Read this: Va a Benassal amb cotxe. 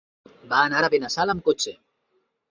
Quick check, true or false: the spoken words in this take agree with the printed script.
false